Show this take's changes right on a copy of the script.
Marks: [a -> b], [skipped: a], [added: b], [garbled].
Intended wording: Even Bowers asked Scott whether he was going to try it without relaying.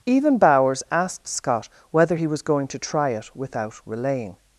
Even Bowers asked Scott whether he was going to try it without relaying.